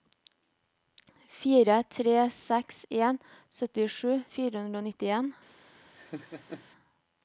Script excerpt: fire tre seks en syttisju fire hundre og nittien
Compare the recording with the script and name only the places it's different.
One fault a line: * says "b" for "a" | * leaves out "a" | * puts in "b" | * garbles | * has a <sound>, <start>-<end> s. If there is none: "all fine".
* has a laugh, 5.9-6.7 s